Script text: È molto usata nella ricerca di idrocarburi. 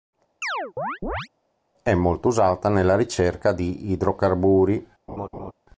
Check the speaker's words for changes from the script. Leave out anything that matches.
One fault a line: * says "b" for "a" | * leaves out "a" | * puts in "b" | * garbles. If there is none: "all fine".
all fine